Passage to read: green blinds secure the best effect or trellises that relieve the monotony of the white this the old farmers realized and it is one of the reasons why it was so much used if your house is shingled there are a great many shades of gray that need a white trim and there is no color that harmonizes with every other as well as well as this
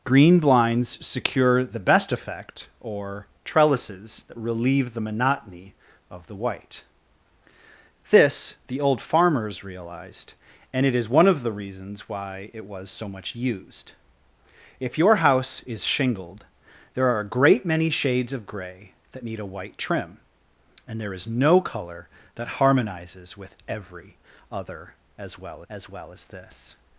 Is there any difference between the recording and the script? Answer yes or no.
no